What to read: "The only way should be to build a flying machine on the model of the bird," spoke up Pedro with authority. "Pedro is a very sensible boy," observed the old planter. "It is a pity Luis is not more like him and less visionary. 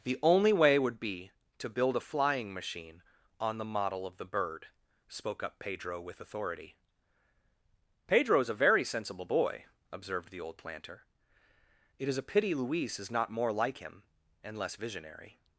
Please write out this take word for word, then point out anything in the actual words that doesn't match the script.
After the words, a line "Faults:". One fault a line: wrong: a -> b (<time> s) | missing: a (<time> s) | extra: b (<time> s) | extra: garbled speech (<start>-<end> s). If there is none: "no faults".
"The only way would be to build a flying machine on the model of the bird," spoke up Pedro with authority. "Pedro is a very sensible boy," observed the old planter. "It is a pity Luis is not more like him and less visionary.
Faults:
wrong: should -> would (0.8 s)